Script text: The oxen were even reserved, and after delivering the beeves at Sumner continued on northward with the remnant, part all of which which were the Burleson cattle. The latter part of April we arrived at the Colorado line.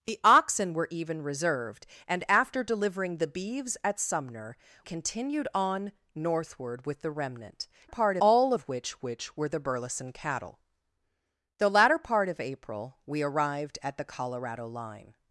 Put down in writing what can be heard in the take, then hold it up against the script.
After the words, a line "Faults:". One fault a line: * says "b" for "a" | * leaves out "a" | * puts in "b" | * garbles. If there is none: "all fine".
The oxen were even reserved, and after delivering the beeves at Sumner continued on northward with the remnant, part all of which which were the Burleson cattle. The latter part of April we arrived at the Colorado line.
Faults:
all fine